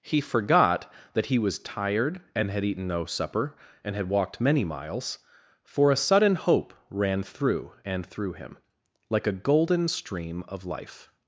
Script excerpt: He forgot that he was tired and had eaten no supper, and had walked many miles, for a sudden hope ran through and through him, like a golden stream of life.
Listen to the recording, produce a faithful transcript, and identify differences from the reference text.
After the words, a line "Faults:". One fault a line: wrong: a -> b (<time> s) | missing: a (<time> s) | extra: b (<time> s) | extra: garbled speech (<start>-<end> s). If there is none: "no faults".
He forgot that he was tired and had eaten no supper, and had walked many miles, for a sudden hope ran through and through him, like a golden stream of life.
Faults:
no faults